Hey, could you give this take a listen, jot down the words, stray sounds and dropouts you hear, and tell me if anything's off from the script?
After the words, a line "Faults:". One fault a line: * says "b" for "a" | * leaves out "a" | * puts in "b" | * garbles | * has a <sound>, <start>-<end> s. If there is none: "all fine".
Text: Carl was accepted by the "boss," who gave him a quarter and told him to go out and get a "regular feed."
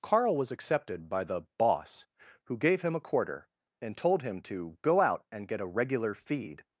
Carl was accepted by the "boss," who gave him a quarter and told him to go out and get a "regular feed."
Faults:
all fine